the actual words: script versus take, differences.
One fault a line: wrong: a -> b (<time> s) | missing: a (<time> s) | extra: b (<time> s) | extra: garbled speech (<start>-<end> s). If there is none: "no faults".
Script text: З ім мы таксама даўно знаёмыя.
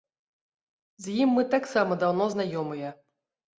no faults